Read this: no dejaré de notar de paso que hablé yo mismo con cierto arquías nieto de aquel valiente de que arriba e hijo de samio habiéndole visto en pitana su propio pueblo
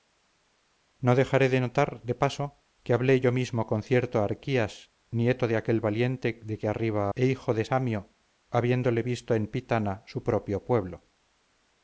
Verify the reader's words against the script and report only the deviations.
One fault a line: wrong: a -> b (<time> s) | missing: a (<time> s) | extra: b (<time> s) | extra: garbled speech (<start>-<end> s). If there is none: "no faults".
no faults